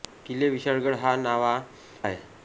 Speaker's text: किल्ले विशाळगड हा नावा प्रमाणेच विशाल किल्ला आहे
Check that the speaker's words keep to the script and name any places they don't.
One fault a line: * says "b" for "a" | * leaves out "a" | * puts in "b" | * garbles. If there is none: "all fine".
* leaves out "प्रमाणेच विशाल किल्ला"